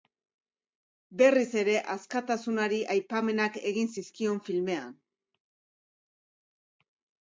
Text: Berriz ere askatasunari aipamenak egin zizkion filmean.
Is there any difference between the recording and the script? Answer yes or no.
no